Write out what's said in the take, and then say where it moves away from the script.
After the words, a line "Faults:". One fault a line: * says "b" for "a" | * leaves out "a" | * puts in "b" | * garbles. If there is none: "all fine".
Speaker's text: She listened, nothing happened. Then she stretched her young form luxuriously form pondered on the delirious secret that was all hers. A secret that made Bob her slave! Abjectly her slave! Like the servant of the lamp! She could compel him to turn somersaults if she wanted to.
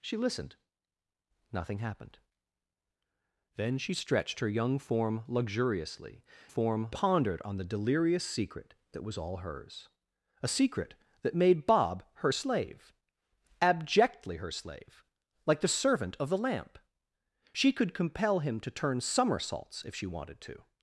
She listened, nothing happened. Then she stretched her young form luxuriously form pondered on the delirious secret that was all hers. A secret that made Bob her slave! Abjectly her slave! Like the servant of the lamp! She could compel him to turn somersaults if she wanted to.
Faults:
all fine